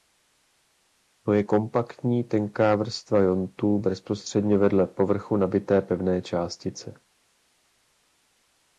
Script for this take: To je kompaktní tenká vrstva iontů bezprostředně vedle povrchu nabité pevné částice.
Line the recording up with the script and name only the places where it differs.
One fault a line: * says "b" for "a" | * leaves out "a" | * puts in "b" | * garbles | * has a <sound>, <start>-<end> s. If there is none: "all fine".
all fine